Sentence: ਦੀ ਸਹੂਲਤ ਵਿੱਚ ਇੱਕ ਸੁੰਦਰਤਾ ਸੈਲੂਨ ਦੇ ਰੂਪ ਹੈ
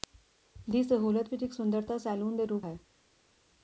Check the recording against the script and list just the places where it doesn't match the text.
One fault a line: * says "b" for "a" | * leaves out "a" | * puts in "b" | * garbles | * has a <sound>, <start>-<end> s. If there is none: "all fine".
all fine